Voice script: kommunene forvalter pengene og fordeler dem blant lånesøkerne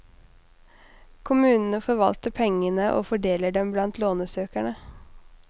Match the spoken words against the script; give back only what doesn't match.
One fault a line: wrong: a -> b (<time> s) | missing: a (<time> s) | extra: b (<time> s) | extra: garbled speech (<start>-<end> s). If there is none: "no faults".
no faults